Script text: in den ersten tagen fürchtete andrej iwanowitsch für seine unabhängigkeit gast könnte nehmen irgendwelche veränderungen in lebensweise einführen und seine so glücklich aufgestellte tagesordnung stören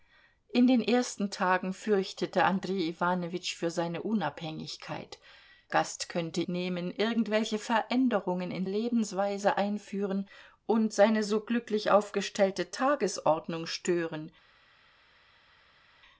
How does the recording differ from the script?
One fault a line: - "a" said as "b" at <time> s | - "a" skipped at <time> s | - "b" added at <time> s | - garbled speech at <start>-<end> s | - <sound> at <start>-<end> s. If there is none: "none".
none